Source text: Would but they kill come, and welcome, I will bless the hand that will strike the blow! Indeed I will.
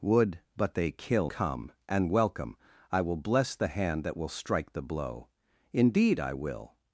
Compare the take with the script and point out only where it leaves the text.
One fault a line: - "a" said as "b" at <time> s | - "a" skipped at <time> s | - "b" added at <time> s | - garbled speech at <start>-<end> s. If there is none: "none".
none